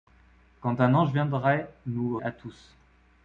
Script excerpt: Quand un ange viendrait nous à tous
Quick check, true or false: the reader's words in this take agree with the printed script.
true